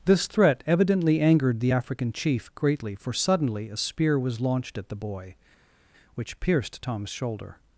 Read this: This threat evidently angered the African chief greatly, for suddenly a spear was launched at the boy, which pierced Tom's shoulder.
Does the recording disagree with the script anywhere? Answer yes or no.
no